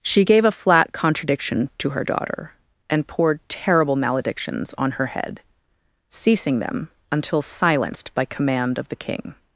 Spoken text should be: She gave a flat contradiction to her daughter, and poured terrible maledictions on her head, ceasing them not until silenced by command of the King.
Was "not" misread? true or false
true